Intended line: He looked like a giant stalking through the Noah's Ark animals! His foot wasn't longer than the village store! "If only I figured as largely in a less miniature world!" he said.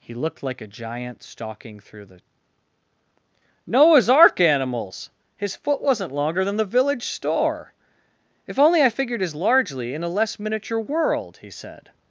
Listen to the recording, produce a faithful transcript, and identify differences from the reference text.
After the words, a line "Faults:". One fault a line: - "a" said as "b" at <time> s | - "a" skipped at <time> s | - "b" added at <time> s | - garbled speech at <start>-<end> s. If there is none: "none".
He looked like a giant stalking through the Noah's Ark animals! His foot wasn't longer than the village store! "If only I figured as largely in a less miniature world!" he said.
Faults:
none